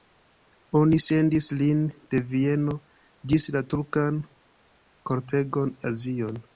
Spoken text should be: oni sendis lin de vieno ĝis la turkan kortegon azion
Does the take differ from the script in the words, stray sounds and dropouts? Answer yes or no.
no